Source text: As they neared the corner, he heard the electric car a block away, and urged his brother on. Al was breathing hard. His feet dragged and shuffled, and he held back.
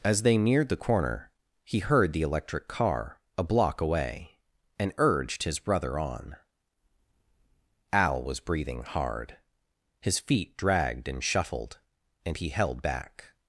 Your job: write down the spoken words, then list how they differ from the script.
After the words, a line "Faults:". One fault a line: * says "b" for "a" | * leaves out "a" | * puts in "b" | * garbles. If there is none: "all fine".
As they neared the corner, he heard the electric car a block away, and urged his brother on. Al was breathing hard. His feet dragged and shuffled, and he held back.
Faults:
all fine